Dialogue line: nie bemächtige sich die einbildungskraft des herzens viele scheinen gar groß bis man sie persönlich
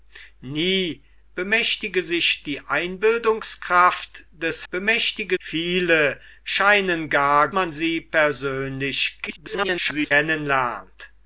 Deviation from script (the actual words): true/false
true